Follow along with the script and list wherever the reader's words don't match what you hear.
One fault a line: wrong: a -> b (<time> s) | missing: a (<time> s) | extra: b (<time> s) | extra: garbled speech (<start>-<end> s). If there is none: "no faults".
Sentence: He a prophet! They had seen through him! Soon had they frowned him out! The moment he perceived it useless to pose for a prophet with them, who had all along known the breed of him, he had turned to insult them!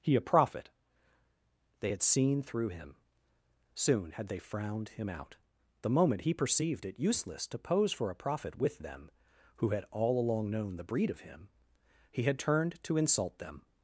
no faults